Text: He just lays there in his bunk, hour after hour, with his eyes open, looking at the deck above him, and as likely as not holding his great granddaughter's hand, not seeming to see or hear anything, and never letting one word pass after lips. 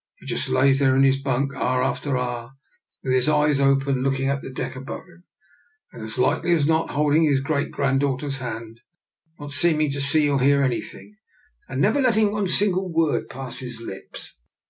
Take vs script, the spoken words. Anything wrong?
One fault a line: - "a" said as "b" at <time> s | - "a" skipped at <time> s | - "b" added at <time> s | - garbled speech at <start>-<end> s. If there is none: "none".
- "single" added at 12.5 s
- "after" said as "his" at 13.6 s